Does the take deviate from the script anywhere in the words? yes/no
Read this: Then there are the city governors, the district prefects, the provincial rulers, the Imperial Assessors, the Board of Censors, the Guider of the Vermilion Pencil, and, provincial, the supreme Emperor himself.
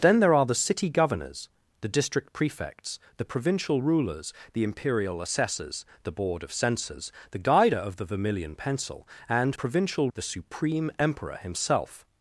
no